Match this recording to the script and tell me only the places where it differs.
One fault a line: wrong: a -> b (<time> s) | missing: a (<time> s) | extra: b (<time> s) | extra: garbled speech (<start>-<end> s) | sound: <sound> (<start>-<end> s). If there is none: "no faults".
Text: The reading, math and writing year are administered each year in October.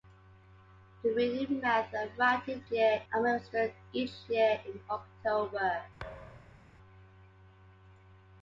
sound: thud (6.0-6.7 s)